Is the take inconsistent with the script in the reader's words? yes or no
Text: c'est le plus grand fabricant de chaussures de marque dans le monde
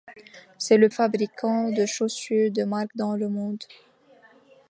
yes